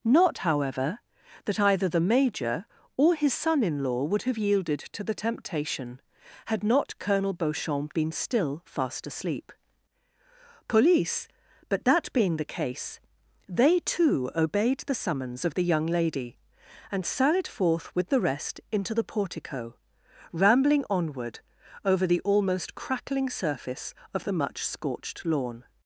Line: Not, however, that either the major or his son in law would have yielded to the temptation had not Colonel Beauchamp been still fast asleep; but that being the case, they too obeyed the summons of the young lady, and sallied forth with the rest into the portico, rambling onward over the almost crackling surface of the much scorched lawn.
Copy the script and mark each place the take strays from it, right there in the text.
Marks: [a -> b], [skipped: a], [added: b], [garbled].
Not, however, that either the major or his son in law would have yielded to the temptation had not Colonel Beauchamp been still fast asleep; [added: police] but that being the case, they too obeyed the summons of the young lady, and sallied forth with the rest into the portico, rambling onward over the almost crackling surface of the much scorched lawn.